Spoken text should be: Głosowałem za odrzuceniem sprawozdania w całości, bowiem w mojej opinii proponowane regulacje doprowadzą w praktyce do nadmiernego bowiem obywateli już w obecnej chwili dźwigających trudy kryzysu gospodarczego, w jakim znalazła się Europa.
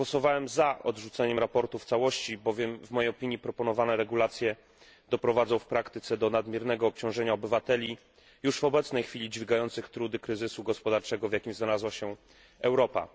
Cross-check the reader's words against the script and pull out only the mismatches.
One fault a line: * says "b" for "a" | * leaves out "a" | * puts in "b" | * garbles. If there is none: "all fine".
* says "obciążenia" for "bowiem"